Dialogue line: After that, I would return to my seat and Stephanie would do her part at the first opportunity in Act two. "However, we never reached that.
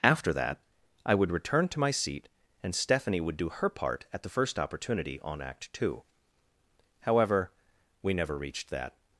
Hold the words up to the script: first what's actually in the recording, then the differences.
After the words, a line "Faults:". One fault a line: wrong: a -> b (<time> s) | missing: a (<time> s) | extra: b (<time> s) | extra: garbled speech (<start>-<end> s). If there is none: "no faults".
After that, I would return to my seat and Stephanie would do her part at the first opportunity on Act two. "However, we never reached that.
Faults:
wrong: in -> on (5.2 s)